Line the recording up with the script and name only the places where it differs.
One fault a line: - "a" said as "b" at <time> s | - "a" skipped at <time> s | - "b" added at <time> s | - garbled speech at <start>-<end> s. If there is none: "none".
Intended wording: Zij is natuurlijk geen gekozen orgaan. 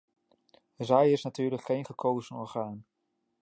none